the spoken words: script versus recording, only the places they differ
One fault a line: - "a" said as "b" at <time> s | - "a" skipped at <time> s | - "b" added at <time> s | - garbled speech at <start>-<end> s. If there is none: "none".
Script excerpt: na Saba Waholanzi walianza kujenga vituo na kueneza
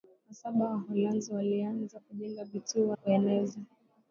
- "na" skipped at 3.0 s